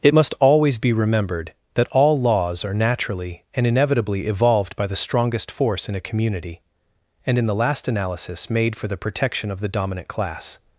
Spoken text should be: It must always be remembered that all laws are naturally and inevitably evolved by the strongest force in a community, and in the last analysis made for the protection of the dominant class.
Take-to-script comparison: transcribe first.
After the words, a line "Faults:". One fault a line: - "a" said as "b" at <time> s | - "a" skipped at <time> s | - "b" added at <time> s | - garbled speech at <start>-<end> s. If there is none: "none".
It must always be remembered that all laws are naturally and inevitably evolved by the strongest force in a community, and in the last analysis made for the protection of the dominant class.
Faults:
none